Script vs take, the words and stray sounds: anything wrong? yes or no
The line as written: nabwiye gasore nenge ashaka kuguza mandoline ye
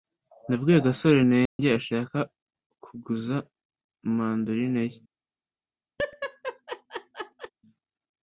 yes